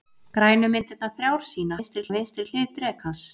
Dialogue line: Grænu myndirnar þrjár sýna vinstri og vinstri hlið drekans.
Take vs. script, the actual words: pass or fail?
pass